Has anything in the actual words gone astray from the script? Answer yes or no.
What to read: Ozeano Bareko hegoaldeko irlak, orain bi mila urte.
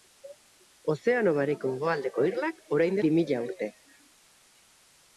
no